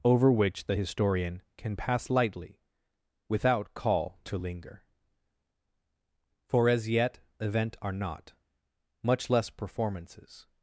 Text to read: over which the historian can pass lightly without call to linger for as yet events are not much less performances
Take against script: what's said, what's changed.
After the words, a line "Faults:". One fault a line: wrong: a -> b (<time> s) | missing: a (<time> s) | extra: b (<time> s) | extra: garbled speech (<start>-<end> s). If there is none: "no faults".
over which the historian can pass lightly without call to linger for as yet event are not much less performances
Faults:
wrong: events -> event (7.4 s)